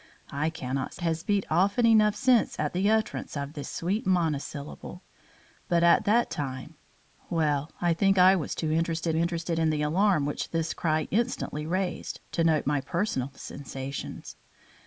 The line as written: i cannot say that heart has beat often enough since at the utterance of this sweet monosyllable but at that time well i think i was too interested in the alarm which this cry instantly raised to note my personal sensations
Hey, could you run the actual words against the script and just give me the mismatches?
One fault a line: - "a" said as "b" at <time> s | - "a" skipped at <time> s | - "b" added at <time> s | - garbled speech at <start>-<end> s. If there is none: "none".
- "say that heart" skipped at 0.9 s
- "interested" added at 9.1 s